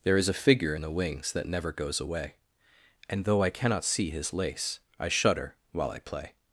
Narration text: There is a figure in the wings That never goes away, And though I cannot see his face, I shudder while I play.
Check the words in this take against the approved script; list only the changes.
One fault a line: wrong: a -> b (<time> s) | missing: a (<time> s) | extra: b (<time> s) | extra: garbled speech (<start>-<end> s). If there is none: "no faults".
wrong: face -> lace (4.3 s)